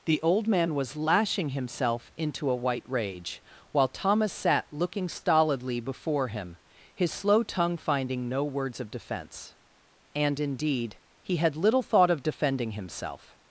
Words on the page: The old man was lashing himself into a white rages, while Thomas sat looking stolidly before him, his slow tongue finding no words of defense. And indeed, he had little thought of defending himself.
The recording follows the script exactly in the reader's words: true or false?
false